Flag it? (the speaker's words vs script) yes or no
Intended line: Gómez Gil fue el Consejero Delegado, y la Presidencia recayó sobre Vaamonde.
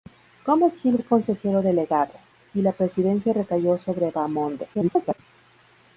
yes